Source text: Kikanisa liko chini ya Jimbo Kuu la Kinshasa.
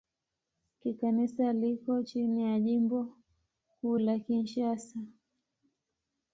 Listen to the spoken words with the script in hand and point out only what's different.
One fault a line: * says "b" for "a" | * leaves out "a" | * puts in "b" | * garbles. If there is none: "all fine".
all fine